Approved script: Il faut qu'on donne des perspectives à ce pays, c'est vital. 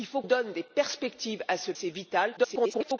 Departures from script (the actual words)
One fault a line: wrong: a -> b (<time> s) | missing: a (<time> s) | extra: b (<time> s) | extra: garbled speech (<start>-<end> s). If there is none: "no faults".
missing: qu'on (0.2 s)
missing: pays (1.7 s)
extra: garbled speech (2.4-3.0 s)